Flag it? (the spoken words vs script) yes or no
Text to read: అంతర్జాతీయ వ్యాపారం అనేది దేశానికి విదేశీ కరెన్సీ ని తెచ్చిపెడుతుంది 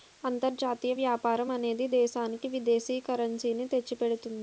no